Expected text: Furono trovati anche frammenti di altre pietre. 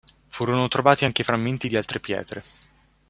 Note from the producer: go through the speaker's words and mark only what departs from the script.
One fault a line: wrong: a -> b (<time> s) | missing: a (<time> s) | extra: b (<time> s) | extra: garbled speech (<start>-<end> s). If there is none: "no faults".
no faults